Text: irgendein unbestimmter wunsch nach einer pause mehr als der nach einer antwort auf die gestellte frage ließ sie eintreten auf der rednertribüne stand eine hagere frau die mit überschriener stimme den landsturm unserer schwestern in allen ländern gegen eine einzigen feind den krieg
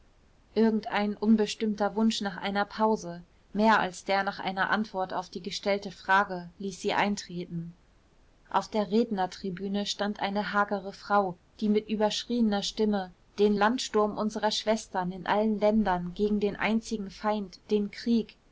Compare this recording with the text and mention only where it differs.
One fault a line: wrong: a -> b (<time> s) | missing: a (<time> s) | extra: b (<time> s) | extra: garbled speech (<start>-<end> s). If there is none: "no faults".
wrong: eine -> den (16.4 s)